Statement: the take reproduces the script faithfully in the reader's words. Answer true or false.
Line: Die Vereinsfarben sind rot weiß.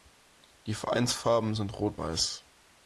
true